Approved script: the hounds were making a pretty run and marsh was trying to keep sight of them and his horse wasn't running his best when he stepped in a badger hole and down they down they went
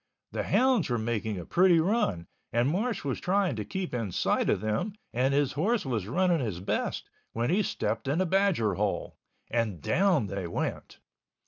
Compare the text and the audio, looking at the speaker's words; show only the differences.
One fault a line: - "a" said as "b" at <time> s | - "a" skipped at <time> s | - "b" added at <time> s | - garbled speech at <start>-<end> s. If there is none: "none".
- "in" added at 3.9 s
- "wasn't" said as "was" at 5.8 s
- "down they" skipped at 10.5 s